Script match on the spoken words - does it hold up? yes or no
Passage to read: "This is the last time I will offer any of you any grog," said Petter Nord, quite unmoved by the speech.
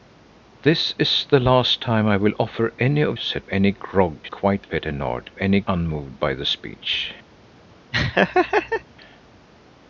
no